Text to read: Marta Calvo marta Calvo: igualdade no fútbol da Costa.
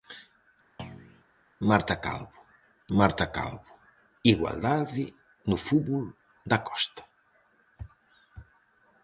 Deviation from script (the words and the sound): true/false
true